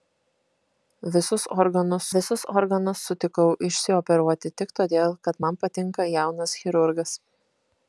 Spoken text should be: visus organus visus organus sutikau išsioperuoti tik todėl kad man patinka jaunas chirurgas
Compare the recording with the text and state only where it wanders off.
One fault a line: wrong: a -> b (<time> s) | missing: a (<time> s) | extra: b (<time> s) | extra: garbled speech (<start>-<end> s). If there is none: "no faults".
no faults